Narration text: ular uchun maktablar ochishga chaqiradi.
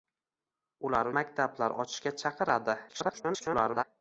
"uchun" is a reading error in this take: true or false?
true